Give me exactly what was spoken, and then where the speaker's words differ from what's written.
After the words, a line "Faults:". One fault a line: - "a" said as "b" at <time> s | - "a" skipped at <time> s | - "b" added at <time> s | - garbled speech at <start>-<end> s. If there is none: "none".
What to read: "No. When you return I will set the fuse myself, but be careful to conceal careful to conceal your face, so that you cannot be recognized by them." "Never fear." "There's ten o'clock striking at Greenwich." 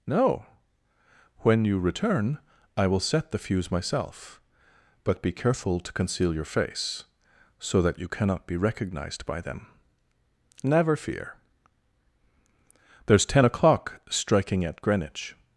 "No. When you return I will set the fuse myself, but be careful to conceal your face, so that you cannot be recognized by them." "Never fear." "There's ten o'clock striking at Greenwich."
Faults:
- "careful to conceal" skipped at 6.3 s